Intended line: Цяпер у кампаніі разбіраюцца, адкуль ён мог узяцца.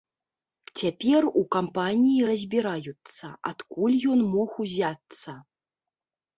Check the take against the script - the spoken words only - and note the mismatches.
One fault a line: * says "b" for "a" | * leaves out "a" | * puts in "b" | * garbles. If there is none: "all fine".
all fine